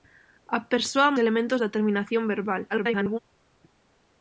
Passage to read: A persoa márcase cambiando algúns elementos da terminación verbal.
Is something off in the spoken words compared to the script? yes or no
yes